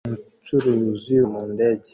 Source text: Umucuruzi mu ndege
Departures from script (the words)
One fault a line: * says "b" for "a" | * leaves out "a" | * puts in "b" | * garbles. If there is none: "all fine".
all fine